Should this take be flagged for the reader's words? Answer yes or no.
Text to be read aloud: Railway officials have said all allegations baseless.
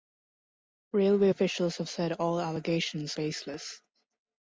no